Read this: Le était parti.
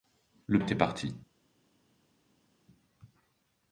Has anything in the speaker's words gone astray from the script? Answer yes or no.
no